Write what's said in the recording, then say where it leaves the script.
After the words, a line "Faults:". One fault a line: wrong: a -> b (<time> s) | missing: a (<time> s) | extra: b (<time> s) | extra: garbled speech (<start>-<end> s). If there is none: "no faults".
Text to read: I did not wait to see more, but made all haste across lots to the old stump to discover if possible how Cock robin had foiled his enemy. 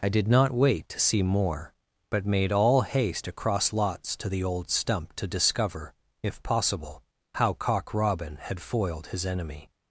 I did not wait to see more, but made all haste across lots to the old stump to discover if possible how Cock robin had foiled his enemy.
Faults:
no faults